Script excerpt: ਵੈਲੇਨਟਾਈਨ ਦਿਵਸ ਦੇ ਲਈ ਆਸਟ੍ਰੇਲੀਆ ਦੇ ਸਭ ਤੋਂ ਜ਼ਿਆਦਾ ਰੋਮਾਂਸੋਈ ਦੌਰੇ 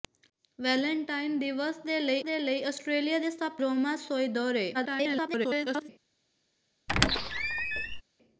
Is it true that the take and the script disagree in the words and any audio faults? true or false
true